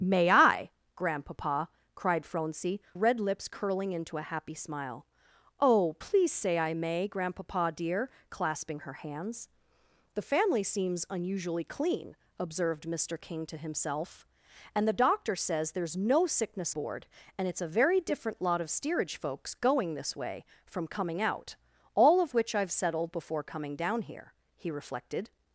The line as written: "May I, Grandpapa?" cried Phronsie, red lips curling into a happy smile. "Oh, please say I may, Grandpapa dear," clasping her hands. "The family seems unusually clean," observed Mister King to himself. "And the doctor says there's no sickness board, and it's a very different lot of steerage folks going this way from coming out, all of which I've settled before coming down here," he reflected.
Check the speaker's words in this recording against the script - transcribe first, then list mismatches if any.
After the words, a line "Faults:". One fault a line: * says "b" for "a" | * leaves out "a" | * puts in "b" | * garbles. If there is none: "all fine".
"May I, Grandpapa?" cried Phronsie, red lips curling into a happy smile. "Oh, please say I may, Grandpapa dear," clasping her hands. "The family seems unusually clean," observed Mister King to himself. "And the doctor says there's no sickness board, and it's a very different lot of steerage folks going this way from coming out, all of which I've settled before coming down here," he reflected.
Faults:
all fine